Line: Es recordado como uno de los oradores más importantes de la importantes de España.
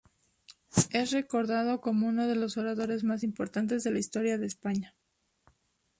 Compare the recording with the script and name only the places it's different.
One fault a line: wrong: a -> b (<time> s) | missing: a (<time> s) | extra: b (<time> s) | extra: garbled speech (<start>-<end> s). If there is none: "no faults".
wrong: importantes -> historia (4.0 s)